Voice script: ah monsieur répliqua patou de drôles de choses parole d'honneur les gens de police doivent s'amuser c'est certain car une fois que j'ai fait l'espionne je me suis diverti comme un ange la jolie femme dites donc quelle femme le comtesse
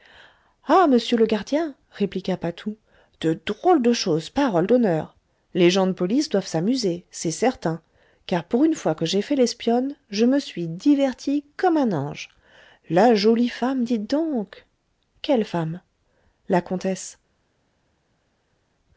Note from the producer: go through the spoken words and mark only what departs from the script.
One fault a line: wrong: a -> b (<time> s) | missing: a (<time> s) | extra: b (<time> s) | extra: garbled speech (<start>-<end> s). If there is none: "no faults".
extra: le gardien (1.1 s)
extra: pour (8.4 s)
wrong: le -> la (16.5 s)